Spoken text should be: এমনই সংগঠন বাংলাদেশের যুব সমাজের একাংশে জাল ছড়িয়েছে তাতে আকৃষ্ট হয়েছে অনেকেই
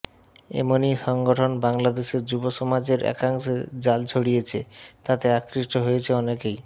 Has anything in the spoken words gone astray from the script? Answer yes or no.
no